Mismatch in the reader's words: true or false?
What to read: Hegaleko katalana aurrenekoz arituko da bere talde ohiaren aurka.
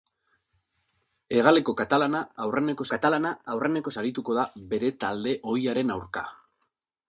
true